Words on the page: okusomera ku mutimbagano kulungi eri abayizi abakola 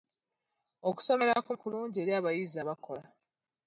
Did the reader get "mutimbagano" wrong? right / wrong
wrong